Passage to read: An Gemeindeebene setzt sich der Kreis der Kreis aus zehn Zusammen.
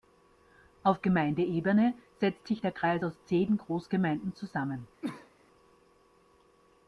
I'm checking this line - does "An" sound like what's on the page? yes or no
no